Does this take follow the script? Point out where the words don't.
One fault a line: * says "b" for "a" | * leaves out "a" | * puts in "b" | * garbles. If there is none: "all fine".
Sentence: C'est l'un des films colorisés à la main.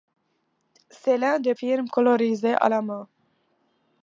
all fine